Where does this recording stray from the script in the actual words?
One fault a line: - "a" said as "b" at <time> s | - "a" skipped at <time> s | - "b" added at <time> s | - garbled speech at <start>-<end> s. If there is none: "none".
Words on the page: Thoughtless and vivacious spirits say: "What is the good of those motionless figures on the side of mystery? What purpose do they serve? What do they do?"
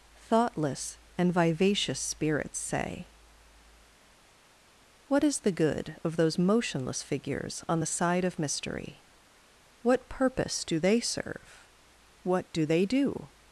none